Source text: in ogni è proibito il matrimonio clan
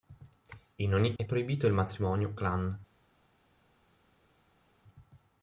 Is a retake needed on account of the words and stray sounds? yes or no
no